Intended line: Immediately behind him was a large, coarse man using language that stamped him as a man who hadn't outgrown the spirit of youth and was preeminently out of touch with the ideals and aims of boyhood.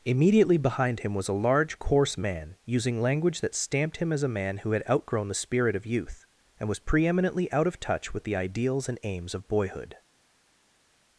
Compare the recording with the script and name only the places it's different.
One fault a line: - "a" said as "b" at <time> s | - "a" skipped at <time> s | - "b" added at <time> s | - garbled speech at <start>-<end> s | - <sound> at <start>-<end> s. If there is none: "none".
- "hadn't" said as "had" at 4.7 s